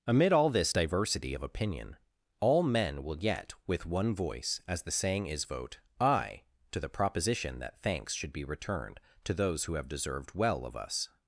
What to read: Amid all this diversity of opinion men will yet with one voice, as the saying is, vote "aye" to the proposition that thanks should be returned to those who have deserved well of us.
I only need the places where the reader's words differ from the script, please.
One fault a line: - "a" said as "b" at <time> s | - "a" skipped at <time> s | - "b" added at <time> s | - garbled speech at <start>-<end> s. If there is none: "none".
- "all" added at 2.4 s